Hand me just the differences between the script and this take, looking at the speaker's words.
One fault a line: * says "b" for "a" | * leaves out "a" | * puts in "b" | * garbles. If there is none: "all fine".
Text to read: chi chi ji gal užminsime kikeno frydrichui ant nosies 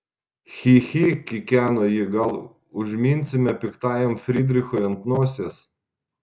* puts in "kikeno"
* says "piktajam" for "kikeno"